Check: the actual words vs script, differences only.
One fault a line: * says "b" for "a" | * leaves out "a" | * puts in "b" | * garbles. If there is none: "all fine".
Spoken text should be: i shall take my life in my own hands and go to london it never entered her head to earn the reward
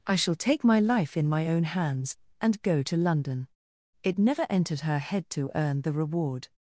all fine